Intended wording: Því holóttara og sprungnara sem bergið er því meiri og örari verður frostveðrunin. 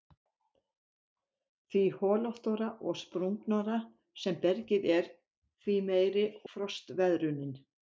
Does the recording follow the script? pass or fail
fail